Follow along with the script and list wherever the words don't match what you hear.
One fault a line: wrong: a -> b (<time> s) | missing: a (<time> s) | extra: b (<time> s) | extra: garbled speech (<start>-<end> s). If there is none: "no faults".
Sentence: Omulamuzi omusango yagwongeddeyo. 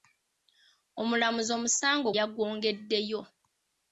no faults